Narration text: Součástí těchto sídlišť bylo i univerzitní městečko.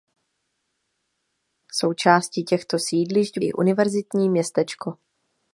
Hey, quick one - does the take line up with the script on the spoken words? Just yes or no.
no